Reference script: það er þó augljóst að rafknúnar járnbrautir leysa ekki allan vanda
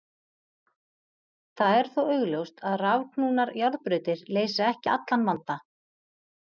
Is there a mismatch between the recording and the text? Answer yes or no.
no